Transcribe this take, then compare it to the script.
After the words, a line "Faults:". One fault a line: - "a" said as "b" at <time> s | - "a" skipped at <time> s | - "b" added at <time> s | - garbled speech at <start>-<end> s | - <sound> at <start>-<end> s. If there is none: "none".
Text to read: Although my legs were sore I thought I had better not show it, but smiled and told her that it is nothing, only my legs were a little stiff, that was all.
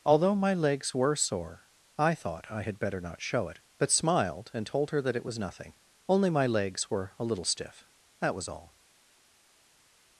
Although my legs were sore I thought I had better not show it, but smiled and told her that it was nothing, only my legs were a little stiff, that was all.
Faults:
- "is" said as "was" at 5.3 s